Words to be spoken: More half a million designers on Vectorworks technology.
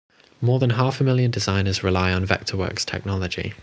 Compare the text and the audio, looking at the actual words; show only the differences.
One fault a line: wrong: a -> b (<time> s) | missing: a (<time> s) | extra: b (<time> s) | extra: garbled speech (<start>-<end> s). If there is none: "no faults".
extra: than (0.6 s)
extra: rely (1.8 s)